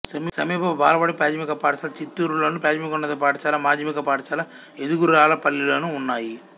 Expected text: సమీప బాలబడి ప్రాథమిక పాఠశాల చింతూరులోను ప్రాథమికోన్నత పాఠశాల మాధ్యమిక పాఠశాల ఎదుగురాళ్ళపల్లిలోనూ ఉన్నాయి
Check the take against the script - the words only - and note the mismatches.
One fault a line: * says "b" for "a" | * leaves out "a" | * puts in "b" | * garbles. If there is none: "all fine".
all fine